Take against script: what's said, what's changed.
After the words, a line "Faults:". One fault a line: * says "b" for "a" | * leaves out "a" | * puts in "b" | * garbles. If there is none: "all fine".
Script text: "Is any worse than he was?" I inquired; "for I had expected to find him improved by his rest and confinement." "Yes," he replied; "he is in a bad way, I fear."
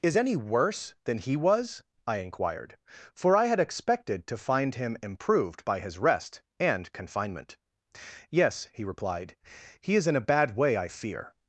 "Is any worse than he was?" I inquired; "for I had expected to find him improved by his rest and confinement." "Yes," he replied; "he is in a bad way, I fear."
Faults:
all fine